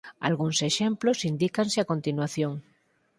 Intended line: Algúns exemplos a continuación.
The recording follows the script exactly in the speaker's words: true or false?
false